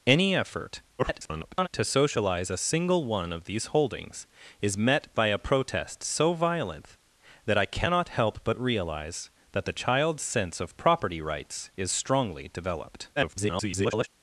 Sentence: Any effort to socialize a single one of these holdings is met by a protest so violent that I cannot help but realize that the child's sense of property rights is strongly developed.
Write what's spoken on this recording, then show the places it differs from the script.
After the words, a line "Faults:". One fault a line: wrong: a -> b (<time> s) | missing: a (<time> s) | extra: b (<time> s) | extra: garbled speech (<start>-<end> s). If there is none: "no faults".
Any effort [garbled] to socialize a single one of these holdings is met by a protest so violent that I cannot help but realize that the child's sense of property rights is strongly developed. [garbled]
Faults:
extra: garbled speech (1.0-1.7 s)
extra: garbled speech (13.2-14.1 s)